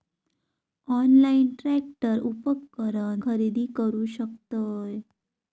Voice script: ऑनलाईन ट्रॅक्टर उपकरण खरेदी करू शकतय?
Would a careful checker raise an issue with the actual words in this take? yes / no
no